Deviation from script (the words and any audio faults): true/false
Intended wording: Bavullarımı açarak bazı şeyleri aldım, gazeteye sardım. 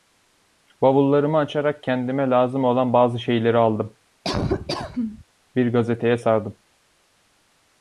true